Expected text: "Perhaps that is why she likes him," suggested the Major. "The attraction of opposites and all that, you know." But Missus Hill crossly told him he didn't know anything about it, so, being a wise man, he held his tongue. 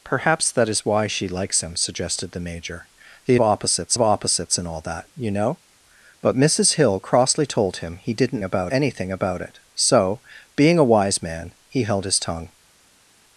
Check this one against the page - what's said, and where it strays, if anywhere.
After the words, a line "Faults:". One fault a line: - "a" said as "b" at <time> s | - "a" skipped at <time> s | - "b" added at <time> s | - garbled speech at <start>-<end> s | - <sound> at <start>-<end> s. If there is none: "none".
"Perhaps that is why she likes him," suggested the Major. "The opposites of opposites and all that, you know." But Missus Hill crossly told him he didn't about anything about it, so, being a wise man, he held his tongue.
Faults:
- "attraction" said as "opposites" at 3.4 s
- "know" said as "about" at 8.4 s